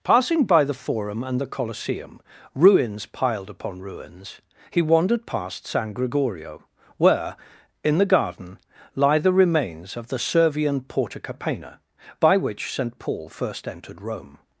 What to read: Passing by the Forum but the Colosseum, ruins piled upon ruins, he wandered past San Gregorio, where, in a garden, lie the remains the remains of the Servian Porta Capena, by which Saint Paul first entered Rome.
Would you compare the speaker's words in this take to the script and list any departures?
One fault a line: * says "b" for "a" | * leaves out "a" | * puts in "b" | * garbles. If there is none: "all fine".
* says "and" for "but"
* says "the" for "a"
* leaves out "the remains"